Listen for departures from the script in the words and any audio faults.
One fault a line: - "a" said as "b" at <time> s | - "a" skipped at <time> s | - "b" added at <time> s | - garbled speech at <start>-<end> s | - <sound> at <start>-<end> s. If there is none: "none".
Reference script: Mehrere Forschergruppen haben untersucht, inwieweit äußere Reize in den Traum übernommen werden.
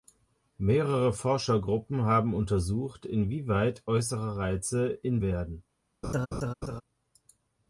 - "den Traum übernommen" skipped at 5.2 s
- laugh at 6.0-6.8 s